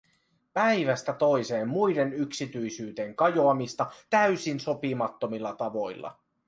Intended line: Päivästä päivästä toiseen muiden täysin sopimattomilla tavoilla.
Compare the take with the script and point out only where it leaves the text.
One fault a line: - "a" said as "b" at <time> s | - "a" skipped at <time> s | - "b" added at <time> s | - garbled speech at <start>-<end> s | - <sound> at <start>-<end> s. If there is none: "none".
- "päivästä" skipped at 1.1 s
- "yksityisyyteen kajoamista" added at 2.1 s